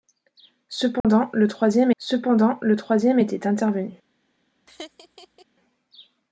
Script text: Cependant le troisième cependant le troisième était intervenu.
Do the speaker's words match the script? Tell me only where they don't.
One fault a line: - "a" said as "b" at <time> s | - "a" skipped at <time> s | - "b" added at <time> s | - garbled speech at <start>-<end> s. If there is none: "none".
none